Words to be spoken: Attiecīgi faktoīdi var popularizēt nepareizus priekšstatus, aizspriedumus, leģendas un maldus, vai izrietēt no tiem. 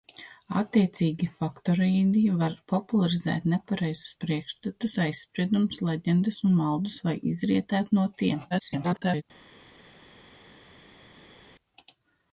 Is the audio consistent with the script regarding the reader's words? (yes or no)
no